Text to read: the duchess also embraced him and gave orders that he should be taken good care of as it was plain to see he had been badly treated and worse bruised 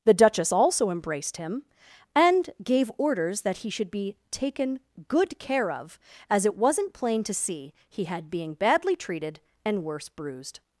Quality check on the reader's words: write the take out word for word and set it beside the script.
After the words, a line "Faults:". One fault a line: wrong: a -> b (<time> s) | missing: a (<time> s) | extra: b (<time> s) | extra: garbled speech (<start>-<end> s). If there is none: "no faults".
the duchess also embraced him and gave orders that he should be taken good care of as it wasn't plain to see he had being badly treated and worse bruised
Faults:
wrong: was -> wasn't (6.6 s)
wrong: been -> being (8.3 s)